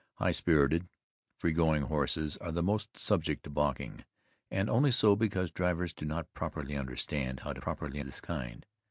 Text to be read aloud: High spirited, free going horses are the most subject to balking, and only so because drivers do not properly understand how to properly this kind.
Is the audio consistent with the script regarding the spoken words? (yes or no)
yes